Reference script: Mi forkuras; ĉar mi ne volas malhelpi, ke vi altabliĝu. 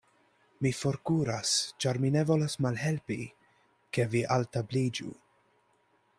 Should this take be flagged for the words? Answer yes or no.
no